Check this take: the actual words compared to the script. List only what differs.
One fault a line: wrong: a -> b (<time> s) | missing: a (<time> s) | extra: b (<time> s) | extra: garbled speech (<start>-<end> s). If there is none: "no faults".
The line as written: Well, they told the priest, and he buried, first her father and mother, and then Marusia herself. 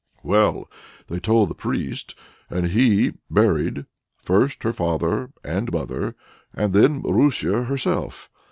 no faults